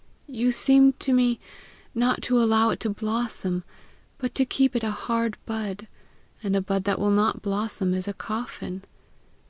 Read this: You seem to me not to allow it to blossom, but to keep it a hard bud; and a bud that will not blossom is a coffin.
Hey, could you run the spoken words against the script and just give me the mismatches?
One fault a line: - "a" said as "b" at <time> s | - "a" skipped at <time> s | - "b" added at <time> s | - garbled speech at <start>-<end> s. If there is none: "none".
none